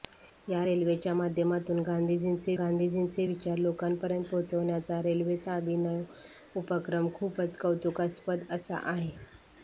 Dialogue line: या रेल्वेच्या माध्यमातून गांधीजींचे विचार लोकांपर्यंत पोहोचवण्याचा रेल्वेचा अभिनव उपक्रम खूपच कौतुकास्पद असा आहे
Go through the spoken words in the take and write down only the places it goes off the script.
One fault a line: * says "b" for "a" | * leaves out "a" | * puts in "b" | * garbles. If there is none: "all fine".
* puts in "गांधीजींचे"